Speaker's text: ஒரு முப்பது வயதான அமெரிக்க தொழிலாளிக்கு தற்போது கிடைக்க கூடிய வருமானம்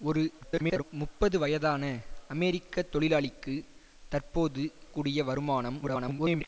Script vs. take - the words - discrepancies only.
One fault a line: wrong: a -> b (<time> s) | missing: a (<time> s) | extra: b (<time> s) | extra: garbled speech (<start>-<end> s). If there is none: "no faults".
extra: garbled speech (0.4-0.8 s)
missing: கிடைக்க (4.6 s)
extra: garbled speech (5.8-6.5 s)